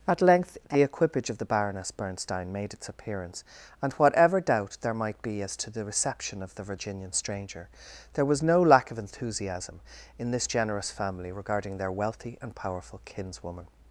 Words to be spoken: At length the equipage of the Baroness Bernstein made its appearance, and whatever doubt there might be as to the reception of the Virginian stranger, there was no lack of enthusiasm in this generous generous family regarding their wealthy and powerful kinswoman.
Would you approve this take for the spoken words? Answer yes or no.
no